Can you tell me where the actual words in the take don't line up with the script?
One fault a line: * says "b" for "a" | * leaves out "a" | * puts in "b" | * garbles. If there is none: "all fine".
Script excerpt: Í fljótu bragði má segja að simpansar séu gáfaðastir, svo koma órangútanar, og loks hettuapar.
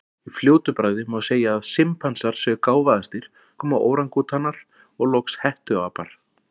* leaves out "svo"